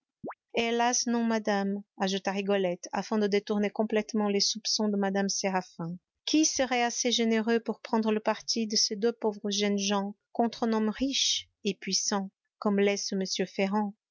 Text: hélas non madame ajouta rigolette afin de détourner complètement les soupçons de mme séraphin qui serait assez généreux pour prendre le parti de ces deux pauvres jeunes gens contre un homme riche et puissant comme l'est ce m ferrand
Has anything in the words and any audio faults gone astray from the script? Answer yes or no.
yes